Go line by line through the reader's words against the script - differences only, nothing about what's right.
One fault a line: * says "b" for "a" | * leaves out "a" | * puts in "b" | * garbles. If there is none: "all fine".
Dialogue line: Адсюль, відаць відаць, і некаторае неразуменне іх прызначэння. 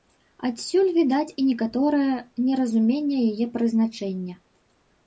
* leaves out "відаць"
* says "яе" for "іх"